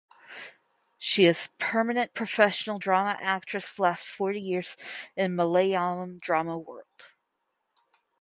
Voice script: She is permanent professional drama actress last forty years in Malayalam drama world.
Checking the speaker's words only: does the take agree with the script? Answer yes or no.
yes